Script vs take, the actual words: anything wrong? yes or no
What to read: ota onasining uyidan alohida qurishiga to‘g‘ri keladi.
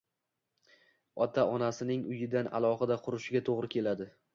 no